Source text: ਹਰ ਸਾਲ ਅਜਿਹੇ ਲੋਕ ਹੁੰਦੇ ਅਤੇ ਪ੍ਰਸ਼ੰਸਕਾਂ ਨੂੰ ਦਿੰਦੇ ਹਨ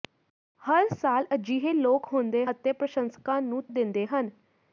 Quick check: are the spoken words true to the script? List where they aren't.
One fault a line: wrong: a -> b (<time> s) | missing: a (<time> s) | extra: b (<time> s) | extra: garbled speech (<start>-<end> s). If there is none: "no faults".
no faults